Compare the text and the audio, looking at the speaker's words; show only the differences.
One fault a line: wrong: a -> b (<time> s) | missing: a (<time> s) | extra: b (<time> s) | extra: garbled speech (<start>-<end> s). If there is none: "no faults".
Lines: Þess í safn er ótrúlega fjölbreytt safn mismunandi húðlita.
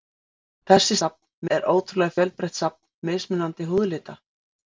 no faults